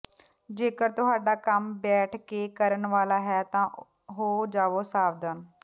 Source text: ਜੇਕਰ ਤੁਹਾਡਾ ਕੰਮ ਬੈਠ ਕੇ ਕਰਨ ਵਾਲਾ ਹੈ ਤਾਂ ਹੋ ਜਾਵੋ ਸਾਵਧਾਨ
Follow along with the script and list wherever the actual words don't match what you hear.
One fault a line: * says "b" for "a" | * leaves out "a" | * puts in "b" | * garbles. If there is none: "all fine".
all fine